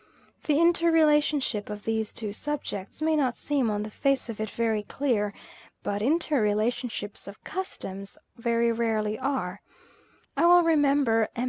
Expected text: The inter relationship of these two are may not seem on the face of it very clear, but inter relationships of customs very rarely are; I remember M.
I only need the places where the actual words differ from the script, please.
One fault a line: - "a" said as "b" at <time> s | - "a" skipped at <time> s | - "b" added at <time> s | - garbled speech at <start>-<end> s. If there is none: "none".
- "are" said as "subjects" at 2.3 s
- "well" added at 10.5 s